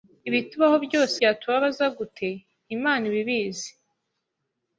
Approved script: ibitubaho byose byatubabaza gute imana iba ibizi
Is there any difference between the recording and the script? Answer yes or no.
no